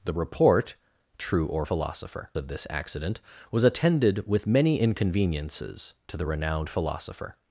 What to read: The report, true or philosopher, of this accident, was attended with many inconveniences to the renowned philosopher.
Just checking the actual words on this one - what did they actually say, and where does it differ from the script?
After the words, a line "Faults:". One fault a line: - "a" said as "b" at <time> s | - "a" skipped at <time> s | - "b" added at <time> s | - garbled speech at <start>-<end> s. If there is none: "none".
The report, true or philosopher, of this accident, was attended with many inconveniences to the renowned philosopher.
Faults:
none